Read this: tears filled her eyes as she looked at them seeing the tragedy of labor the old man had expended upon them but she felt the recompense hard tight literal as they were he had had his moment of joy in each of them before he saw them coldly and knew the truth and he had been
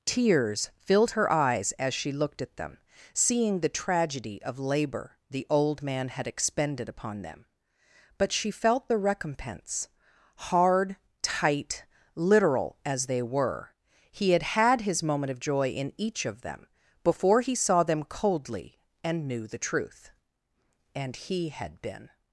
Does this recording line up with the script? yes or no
yes